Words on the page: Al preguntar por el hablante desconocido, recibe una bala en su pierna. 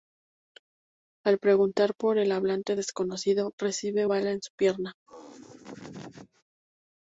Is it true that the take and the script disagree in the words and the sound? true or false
true